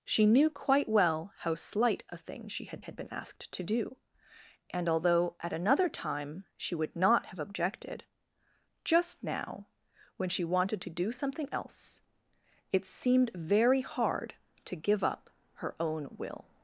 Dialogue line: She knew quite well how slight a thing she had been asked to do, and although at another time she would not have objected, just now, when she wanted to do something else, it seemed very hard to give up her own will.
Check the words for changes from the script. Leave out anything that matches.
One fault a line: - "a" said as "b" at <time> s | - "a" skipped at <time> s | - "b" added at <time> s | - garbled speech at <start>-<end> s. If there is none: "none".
- "had" added at 2.8 s